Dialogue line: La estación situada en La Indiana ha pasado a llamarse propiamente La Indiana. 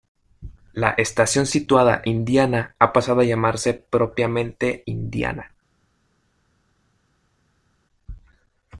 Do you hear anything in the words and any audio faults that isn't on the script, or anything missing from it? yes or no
yes